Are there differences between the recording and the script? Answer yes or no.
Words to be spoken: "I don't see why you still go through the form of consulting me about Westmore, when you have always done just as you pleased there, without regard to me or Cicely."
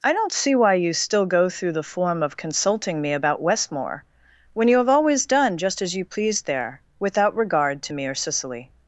no